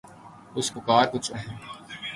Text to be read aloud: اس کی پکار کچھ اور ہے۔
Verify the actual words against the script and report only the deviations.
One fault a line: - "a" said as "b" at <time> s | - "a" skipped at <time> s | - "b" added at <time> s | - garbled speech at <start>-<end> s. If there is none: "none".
- "کی" skipped at 0.7 s
- "اور" skipped at 1.3 s